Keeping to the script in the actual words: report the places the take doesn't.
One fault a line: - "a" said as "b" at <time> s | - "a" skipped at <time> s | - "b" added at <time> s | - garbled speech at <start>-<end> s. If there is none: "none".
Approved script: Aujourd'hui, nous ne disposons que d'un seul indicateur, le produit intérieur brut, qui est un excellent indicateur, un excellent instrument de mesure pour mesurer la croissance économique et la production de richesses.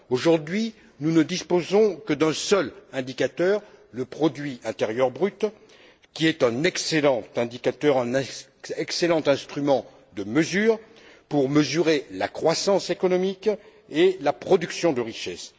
none